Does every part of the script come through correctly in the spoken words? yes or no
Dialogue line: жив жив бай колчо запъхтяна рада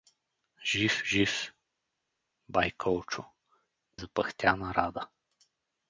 yes